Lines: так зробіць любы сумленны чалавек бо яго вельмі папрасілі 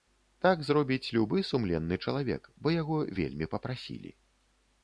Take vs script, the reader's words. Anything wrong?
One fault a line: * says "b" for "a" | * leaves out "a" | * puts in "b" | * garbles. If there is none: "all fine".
all fine